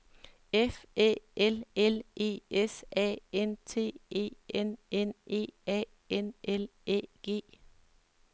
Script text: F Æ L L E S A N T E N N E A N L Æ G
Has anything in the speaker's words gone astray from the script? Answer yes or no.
no